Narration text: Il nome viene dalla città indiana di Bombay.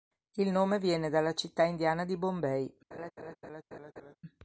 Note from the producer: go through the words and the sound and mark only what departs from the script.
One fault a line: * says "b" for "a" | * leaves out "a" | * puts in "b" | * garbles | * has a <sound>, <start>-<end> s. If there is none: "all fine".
* has a laugh, 2.9-4.2 s